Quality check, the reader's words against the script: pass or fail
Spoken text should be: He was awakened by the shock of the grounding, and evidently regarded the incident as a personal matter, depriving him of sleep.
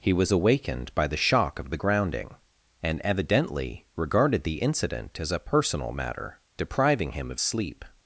pass